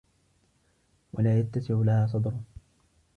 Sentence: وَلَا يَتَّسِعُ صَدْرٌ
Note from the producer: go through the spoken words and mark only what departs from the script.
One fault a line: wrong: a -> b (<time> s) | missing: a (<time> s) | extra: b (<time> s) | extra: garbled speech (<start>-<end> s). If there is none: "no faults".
extra: لَهَا (1.8 s)